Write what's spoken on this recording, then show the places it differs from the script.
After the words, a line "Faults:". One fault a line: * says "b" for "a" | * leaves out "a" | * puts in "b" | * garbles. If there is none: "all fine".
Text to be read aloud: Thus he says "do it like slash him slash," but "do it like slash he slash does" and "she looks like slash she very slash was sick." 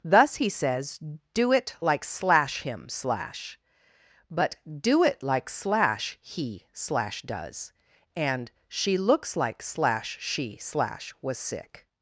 Thus he says "do it like slash him slash," but "do it like slash he slash does" and "she looks like slash she slash was sick."
Faults:
* leaves out "very"